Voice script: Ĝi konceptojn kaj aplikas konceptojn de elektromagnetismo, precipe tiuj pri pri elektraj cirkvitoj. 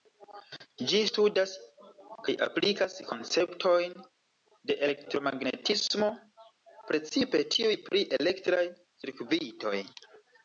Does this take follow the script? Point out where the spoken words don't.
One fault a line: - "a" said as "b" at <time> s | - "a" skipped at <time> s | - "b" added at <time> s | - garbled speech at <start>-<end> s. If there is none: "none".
- "konceptojn" said as "studas" at 1.1 s
- "pri" skipped at 8.0 s